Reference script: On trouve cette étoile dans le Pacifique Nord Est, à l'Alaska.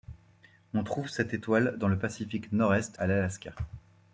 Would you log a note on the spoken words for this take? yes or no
no